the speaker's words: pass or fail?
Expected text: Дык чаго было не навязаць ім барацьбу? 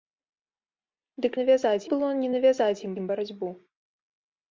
fail